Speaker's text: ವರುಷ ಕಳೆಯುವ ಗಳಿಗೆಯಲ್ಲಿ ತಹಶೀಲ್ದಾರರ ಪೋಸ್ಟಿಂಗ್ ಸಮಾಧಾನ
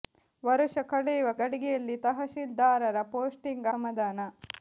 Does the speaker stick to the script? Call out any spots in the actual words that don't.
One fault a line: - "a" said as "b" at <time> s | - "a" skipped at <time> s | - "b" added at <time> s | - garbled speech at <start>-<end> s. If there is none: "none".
none